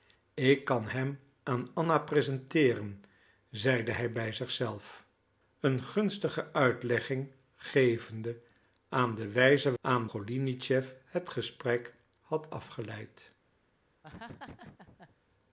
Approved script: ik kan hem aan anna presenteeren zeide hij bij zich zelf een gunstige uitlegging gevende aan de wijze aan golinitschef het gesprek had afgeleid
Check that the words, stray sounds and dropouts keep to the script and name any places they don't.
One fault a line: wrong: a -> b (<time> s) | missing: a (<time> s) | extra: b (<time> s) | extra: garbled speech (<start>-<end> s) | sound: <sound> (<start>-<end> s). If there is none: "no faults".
sound: laugh (14.0-15.2 s)